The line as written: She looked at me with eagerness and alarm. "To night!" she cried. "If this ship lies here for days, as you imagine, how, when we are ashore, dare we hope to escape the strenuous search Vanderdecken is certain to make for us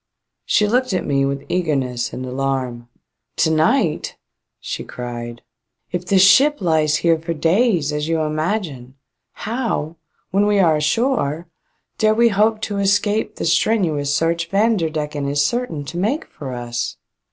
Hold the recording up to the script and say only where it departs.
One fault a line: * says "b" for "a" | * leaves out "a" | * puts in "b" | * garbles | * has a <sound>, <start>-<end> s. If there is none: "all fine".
all fine